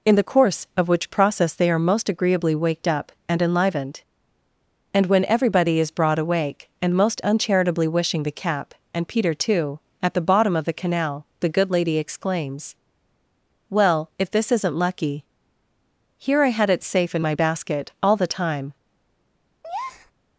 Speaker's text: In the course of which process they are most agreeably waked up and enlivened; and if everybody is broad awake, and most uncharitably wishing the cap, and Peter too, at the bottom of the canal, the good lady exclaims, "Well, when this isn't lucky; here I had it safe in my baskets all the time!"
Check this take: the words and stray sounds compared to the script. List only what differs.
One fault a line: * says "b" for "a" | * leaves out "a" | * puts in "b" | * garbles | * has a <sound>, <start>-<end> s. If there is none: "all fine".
* says "when" for "if"
* says "if" for "when"
* says "basket" for "baskets"
* has a breath, 19.6-20.1 s